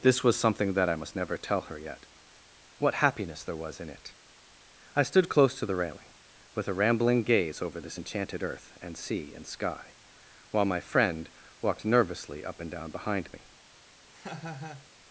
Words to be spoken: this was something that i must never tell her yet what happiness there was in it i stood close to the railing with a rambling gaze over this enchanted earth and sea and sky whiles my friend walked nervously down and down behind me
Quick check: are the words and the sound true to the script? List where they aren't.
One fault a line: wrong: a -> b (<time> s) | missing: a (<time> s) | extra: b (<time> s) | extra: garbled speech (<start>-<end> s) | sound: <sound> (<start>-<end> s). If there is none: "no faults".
wrong: whiles -> while (10.5 s)
wrong: down -> up (12.4 s)
sound: laugh (14.1-14.9 s)